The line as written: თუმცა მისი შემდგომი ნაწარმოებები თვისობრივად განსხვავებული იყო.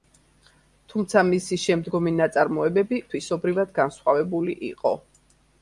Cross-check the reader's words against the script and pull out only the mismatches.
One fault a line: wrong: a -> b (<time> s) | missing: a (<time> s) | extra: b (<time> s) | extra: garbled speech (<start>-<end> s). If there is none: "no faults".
no faults